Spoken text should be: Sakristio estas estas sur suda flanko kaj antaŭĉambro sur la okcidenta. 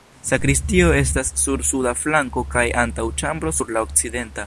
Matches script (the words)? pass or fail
fail